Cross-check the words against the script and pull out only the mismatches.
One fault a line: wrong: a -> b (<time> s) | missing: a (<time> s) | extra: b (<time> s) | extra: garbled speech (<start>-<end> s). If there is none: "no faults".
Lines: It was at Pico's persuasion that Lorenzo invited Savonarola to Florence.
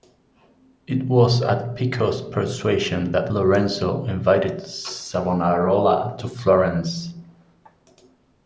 no faults